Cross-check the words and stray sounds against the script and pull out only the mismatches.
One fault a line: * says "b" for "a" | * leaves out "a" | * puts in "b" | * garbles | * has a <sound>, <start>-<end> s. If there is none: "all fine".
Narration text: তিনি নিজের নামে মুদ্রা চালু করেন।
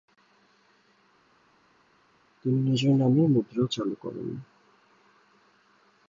all fine